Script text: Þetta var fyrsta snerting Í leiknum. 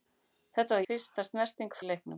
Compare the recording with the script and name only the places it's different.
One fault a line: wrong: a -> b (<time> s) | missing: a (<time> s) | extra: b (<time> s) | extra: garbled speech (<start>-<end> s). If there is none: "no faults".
no faults